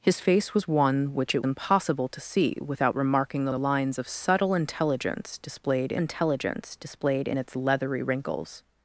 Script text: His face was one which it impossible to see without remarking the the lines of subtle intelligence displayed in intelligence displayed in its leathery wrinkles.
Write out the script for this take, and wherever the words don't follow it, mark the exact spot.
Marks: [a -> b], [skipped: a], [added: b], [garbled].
His face was one which it impossible to see without remarking the the lines of subtle intelligence displayed in intelligence displayed in its leathery wrinkles.